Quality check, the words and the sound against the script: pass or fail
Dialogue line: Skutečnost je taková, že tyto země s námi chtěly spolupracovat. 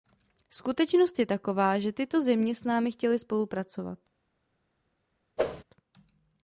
fail